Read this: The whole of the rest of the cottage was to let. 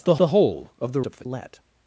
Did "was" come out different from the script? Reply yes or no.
yes